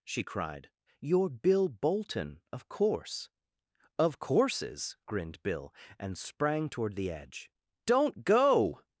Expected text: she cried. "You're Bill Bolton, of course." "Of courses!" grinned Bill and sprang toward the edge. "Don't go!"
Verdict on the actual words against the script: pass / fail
pass